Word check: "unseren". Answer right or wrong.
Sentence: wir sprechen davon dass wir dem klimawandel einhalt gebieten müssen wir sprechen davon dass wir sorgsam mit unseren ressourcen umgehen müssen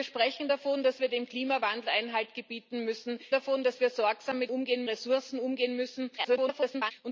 wrong